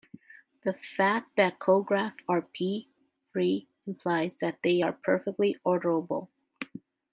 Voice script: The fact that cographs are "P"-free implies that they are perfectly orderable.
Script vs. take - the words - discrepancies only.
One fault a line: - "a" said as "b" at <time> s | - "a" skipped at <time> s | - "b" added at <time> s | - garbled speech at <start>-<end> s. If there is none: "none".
none